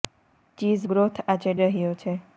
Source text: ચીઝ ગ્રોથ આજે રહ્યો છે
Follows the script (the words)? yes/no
yes